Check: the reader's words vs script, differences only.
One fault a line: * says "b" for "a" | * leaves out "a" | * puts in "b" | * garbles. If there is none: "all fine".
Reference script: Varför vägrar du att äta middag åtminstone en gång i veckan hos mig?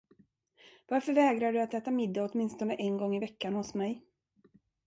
all fine